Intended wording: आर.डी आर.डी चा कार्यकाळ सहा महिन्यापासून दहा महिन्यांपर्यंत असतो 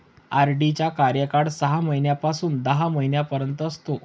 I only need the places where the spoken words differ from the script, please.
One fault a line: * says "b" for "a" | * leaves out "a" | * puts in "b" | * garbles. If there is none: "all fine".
* leaves out "आर.डी"